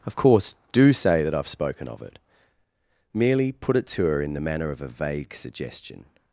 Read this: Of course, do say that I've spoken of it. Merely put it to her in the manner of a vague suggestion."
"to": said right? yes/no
yes